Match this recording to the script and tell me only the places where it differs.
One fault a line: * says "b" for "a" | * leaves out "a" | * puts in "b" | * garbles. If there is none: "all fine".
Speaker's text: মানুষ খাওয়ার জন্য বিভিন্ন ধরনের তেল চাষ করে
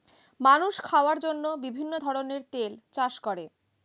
all fine